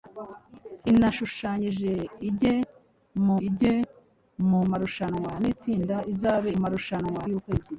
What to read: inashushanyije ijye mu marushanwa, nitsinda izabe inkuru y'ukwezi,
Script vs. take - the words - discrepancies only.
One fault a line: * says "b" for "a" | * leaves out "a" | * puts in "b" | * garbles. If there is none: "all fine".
* puts in "ijye mu"
* says "marushanwa" for "inkuru"